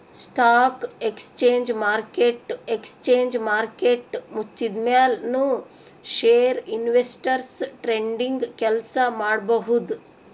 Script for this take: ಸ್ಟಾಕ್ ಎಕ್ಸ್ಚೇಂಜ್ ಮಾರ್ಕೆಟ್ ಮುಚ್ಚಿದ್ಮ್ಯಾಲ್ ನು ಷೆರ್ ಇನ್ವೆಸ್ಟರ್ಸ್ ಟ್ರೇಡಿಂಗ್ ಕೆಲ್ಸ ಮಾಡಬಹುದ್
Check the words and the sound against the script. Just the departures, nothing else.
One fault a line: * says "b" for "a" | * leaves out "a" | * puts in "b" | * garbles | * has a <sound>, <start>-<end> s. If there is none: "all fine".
* puts in "ಎಕ್ಸ್ಚೇಂಜ್ ಮಾರ್ಕೆಟ್"